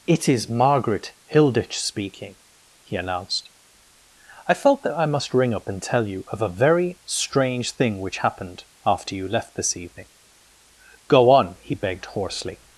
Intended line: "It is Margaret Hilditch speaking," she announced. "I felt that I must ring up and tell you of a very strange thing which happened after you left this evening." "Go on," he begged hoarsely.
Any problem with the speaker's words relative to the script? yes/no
yes